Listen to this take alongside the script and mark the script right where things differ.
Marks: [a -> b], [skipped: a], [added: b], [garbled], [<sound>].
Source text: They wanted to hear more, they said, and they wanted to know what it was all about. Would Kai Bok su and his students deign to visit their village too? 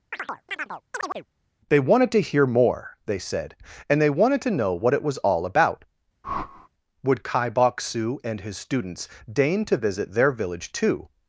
[chirp] They wanted to hear more, they said, and they wanted to know what it was all about. [whoosh] Would Kai Bok su and his students deign to visit their village too?